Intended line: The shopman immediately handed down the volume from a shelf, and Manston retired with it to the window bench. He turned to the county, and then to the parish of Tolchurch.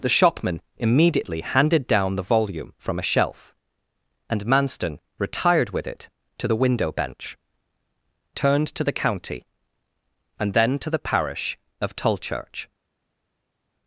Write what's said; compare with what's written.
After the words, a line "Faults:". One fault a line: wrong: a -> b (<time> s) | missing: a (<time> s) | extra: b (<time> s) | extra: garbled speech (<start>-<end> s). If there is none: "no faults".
The shopman immediately handed down the volume from a shelf, and Manston retired with it to the window bench. turned to the county, and then to the parish of Tolchurch.
Faults:
missing: He (7.4 s)